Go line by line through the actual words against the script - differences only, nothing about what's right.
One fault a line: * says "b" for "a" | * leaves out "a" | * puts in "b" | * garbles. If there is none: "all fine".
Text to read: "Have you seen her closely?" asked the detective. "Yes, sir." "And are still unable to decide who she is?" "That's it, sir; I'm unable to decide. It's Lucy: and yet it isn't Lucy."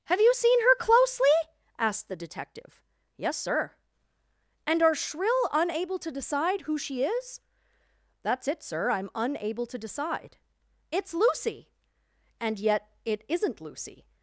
* says "shrill" for "still"